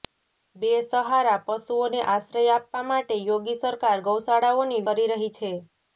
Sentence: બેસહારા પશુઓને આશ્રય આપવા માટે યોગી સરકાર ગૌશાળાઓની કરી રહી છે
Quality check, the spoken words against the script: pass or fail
pass